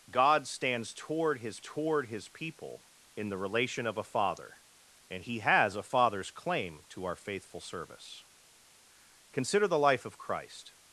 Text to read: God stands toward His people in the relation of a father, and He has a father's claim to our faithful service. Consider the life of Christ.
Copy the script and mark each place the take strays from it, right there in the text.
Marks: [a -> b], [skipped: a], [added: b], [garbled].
God stands toward His [added: toward His] people in the relation of a father, and He has a father's claim to our faithful service. Consider the life of Christ.